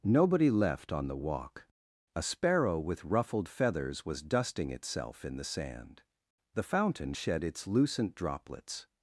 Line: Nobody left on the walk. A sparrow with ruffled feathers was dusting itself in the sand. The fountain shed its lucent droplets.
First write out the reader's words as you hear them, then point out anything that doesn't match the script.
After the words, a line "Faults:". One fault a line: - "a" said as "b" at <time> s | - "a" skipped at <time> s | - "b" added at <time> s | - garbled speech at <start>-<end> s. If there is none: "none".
Nobody left on the walk. A sparrow with ruffled feathers was dusting itself in the sand. The fountain shed its lucent droplets.
Faults:
none